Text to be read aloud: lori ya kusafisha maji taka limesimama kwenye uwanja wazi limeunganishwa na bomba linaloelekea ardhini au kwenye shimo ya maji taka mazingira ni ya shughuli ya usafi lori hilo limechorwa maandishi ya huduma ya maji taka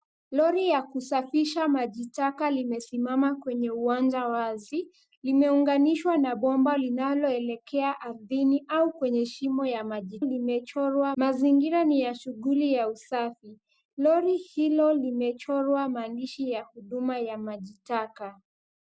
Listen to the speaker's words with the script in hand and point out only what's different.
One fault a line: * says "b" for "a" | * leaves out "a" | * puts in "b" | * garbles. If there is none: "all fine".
* says "limechorwa" for "taka"